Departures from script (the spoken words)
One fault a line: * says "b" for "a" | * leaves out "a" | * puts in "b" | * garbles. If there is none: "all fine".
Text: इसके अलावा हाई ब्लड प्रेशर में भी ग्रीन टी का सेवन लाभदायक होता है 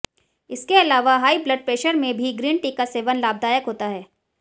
all fine